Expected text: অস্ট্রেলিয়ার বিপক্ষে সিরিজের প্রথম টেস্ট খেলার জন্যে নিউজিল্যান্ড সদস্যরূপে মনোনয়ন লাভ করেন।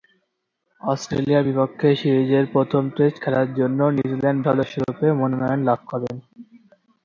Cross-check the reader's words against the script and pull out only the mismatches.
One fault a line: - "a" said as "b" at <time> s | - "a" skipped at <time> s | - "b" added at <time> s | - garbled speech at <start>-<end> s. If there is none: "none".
none